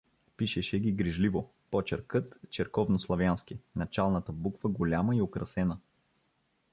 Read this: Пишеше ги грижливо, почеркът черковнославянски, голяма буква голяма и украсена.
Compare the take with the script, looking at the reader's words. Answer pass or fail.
fail